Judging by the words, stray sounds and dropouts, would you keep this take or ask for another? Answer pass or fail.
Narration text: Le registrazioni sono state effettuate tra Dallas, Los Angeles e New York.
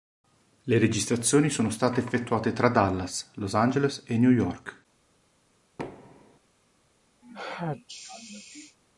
fail